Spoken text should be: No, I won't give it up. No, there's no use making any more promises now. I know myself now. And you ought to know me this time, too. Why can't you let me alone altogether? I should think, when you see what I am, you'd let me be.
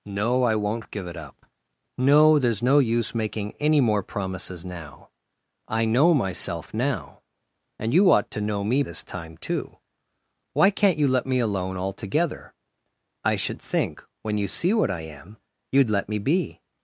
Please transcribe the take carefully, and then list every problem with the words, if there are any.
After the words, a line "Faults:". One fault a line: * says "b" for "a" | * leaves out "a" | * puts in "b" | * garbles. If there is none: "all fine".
No, I won't give it up. No, there's no use making any more promises now. I know myself now. And you ought to know me this time, too. Why can't you let me alone altogether? I should think, when you see what I am, you'd let me be.
Faults:
all fine